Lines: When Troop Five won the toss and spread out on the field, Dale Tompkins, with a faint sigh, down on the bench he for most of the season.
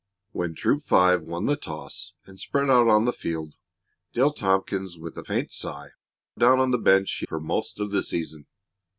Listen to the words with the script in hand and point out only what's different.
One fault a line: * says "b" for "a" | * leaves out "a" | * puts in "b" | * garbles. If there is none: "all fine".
all fine